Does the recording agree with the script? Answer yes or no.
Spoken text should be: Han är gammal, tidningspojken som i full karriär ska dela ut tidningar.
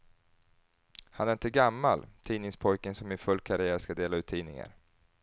no